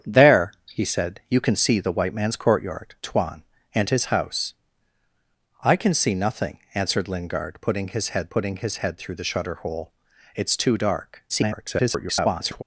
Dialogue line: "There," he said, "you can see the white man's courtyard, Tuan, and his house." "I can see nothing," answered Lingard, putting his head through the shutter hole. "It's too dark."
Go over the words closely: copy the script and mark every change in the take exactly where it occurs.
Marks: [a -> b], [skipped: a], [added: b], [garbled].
"There," he said, "you can see the white man's courtyard, Tuan, and his house." "I can see nothing," answered Lingard, putting his head [added: putting his head] through the shutter hole. "It's too dark." [garbled]